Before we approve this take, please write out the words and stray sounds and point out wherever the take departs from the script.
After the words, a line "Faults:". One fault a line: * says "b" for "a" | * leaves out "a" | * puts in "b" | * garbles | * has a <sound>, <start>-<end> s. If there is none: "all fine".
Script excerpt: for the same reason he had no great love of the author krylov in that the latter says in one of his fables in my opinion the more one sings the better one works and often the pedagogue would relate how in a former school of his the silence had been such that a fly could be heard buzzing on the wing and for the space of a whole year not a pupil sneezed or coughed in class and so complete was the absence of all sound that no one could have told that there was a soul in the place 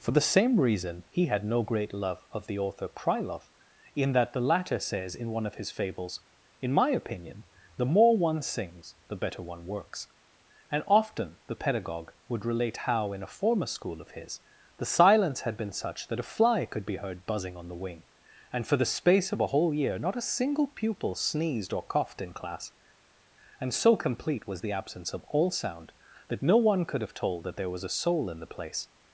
for the same reason he had no great love of the author krylov in that the latter says in one of his fables in my opinion the more one sings the better one works and often the pedagogue would relate how in a former school of his the silence had been such that a fly could be heard buzzing on the wing and for the space of a whole year not a single pupil sneezed or coughed in class and so complete was the absence of all sound that no one could have told that there was a soul in the place
Faults:
* puts in "single"